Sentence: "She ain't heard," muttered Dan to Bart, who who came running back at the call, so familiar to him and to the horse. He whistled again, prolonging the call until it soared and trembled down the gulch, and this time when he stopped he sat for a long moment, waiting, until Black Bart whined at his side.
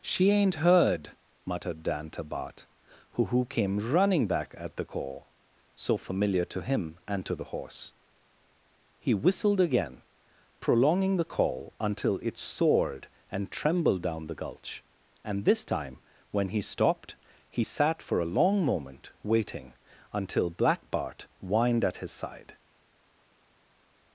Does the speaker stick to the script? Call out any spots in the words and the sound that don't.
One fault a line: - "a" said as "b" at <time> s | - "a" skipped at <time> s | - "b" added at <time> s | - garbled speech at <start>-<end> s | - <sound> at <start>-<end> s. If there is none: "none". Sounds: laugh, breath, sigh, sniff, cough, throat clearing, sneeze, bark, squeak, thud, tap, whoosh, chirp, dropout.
none